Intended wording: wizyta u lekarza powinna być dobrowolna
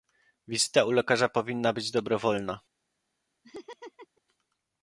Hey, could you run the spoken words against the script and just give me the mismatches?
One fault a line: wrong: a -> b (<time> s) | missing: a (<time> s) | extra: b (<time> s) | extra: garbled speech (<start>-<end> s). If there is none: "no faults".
no faults